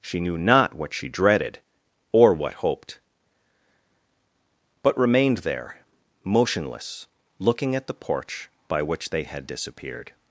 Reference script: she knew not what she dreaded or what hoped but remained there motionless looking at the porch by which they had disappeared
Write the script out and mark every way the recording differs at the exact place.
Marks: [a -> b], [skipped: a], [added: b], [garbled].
she knew not what she dreaded or what hoped but remained there motionless looking at the porch by which they had disappeared